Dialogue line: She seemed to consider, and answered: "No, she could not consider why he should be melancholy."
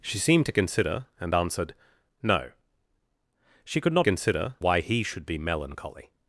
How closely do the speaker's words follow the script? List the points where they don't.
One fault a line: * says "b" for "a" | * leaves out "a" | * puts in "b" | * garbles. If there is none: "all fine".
all fine